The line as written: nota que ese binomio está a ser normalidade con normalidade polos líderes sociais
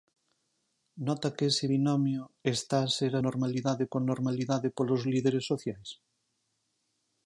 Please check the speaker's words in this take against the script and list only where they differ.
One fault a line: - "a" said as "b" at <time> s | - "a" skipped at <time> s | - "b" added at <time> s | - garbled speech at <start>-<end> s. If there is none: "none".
none